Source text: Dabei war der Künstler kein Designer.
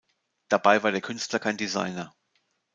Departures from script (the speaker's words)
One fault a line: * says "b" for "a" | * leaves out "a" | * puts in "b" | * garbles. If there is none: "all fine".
all fine